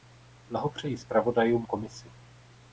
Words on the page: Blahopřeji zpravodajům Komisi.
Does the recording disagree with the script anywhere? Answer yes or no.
no